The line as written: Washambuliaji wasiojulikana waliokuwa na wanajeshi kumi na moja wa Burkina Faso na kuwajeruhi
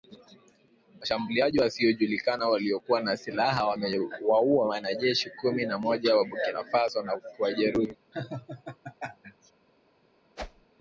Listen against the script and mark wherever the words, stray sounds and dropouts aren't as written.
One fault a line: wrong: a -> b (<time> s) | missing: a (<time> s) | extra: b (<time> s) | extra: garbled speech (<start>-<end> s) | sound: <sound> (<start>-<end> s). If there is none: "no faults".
extra: silaha wamewaua (3.2 s)
sound: laugh (8.1-9.5 s)
sound: whoosh (10.4-10.7 s)